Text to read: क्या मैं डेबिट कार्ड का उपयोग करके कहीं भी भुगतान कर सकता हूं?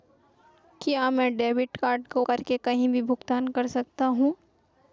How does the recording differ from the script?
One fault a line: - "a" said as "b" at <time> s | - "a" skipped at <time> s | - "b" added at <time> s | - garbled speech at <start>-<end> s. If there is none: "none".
- "उपयोग" skipped at 2.2 s